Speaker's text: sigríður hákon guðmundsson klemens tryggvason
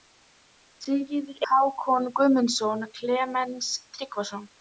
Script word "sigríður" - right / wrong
right